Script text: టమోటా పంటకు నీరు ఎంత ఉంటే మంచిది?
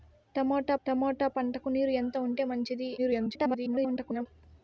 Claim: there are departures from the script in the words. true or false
true